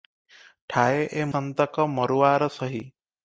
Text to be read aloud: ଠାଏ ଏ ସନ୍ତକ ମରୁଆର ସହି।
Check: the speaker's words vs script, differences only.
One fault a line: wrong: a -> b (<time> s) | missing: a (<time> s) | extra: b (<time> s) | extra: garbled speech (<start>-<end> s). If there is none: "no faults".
no faults